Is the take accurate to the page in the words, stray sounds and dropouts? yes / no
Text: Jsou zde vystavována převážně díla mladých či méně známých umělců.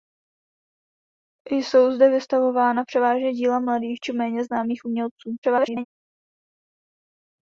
no